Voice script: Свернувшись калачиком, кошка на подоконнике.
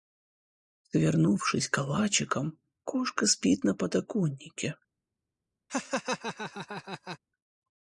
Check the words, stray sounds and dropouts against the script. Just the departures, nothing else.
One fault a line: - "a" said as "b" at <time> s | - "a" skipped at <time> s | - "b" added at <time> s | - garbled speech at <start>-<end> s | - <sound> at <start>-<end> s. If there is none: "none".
- "спит" added at 3.3 s
- laugh at 5.7-7.2 s